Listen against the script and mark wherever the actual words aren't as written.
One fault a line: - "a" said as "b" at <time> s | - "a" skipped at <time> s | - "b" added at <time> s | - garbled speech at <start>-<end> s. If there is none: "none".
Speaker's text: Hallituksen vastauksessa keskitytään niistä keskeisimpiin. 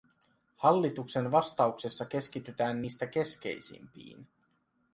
none